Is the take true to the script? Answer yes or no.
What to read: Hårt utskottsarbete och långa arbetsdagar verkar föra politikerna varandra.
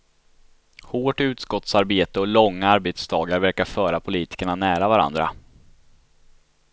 no